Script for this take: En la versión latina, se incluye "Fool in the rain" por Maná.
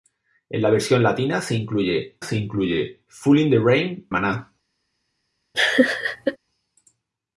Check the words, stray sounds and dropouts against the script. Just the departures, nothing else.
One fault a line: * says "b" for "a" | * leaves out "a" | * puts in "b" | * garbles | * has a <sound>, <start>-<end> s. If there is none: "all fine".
* puts in "se incluye"
* leaves out "por"
* has a laugh, 5.5-6.4 s